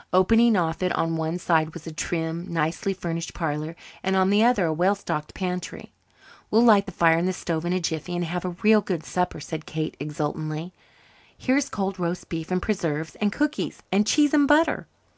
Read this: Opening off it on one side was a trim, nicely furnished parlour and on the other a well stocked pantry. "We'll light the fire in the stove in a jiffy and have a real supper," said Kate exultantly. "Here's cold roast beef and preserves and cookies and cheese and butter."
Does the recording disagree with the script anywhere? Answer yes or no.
yes